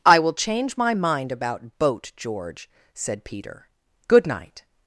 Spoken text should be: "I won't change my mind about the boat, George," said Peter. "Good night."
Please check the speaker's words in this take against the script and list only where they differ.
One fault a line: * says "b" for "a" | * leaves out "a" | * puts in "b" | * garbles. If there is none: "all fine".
* says "will" for "won't"
* leaves out "the"